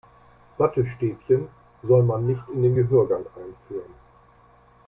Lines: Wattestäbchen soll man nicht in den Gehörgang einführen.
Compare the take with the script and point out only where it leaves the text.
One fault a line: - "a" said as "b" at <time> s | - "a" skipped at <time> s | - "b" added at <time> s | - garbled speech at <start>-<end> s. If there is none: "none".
none